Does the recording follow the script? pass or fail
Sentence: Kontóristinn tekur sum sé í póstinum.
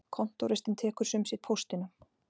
pass